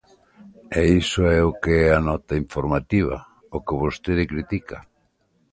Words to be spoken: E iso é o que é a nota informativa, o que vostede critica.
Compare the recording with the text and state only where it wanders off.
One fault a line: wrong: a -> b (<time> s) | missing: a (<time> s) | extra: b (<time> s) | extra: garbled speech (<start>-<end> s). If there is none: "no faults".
no faults